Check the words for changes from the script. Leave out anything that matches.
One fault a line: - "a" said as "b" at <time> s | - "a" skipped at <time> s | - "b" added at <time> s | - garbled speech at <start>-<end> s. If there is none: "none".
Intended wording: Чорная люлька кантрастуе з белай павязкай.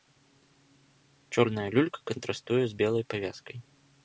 none